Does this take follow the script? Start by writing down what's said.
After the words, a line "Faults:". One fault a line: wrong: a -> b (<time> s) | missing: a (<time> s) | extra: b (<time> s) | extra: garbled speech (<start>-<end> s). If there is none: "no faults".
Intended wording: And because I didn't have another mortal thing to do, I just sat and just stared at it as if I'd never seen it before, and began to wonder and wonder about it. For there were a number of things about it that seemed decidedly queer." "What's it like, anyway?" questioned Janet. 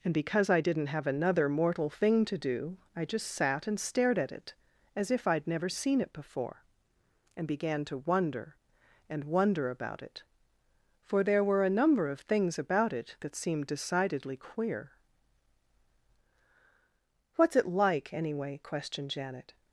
And because I didn't have another mortal thing to do, I just sat and stared at it as if I'd never seen it before, and began to wonder and wonder about it. For there were a number of things about it that seemed decidedly queer." "What's it like, anyway?" questioned Janet.
Faults:
missing: just (3.8 s)